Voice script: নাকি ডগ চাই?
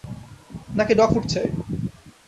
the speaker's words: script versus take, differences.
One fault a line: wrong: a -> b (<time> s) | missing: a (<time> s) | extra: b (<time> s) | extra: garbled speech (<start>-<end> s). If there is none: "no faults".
extra: ফুড (1.1 s)